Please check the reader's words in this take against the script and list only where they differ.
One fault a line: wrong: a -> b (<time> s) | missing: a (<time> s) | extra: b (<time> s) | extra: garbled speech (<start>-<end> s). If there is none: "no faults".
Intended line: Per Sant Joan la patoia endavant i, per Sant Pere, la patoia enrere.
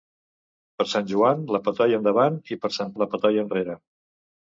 missing: Pere (3.0 s)